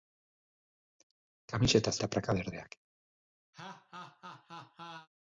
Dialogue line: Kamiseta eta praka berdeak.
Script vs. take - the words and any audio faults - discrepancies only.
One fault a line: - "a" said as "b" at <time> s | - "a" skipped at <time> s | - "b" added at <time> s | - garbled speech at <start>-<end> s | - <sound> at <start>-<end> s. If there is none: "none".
- laugh at 3.5-5.1 s